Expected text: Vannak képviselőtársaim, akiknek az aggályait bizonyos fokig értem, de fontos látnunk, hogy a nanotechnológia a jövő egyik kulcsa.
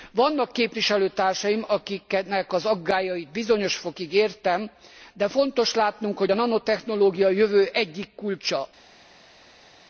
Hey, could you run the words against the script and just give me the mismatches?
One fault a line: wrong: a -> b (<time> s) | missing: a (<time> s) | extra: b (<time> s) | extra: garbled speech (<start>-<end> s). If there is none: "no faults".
no faults